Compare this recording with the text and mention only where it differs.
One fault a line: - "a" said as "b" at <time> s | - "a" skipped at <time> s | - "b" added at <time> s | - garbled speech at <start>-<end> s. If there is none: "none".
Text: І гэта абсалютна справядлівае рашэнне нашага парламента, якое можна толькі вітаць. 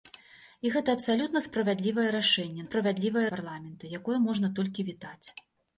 - "нашага" said as "справядлівае" at 2.7 s